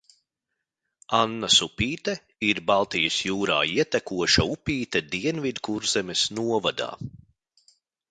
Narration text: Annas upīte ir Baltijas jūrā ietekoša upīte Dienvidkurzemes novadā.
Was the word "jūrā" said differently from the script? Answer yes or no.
no